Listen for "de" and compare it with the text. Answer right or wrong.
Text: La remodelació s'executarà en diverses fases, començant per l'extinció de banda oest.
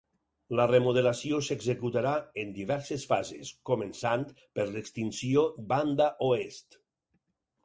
wrong